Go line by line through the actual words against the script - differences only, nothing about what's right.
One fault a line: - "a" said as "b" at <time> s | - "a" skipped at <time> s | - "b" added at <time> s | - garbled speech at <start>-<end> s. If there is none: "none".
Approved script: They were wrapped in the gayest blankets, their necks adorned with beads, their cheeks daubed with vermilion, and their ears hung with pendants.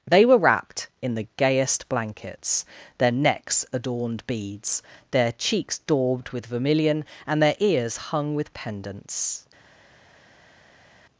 - "with" skipped at 4.2 s